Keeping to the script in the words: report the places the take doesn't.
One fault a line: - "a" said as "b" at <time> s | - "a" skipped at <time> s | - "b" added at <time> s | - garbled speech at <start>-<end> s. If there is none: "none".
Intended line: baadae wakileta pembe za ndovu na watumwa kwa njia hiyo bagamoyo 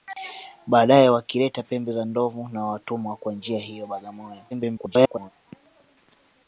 - garbled speech at 4.5-5.3 s